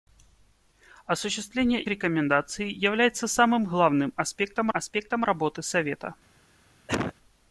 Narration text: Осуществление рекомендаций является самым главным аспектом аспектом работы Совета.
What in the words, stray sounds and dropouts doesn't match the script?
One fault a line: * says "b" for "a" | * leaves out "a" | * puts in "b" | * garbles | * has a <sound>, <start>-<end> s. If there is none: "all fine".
* has a cough, 6.9-7.1 s